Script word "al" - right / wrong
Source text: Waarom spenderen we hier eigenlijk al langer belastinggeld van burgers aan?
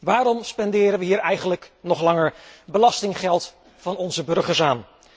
wrong